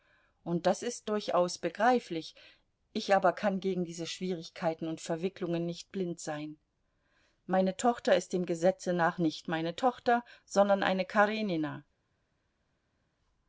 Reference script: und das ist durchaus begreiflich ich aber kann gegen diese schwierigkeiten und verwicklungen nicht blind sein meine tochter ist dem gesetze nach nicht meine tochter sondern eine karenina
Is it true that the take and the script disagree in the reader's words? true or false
false